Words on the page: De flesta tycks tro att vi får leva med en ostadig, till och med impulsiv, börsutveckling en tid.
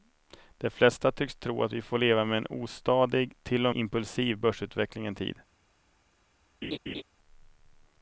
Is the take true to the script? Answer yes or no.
no